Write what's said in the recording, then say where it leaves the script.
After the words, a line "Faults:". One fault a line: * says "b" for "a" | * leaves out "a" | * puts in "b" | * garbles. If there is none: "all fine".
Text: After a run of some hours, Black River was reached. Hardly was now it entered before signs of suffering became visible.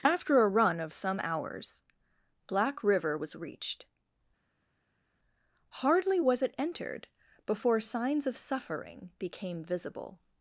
After a run of some hours, Black River was reached. Hardly was it entered before signs of suffering became visible.
Faults:
* leaves out "now"